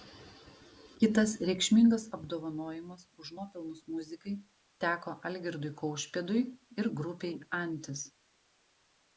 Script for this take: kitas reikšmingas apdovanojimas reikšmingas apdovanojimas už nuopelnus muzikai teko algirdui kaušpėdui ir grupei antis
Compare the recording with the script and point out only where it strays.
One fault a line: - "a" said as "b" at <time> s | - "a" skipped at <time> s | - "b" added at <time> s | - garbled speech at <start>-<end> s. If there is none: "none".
- "reikšmingas apdovanojimas" skipped at 3.0 s